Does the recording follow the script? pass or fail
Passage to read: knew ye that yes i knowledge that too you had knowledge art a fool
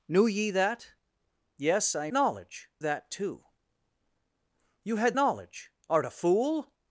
pass